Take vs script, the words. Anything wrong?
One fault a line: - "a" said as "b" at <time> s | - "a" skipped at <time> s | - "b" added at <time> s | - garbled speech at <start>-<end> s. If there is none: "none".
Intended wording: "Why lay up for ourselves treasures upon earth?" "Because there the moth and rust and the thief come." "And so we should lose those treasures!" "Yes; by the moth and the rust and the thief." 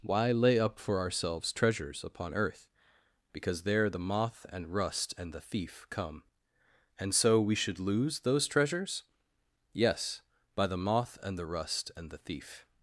none